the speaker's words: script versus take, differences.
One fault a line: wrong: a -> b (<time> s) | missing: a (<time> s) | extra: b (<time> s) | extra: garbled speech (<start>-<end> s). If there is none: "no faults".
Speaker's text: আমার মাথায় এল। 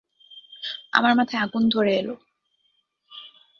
extra: আগুন ধরে (1.4 s)